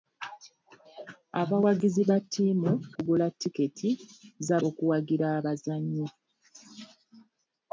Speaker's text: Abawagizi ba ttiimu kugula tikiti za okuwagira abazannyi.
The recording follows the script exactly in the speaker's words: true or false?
true